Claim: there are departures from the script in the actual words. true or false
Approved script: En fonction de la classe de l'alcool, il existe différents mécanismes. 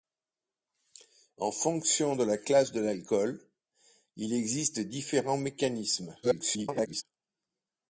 true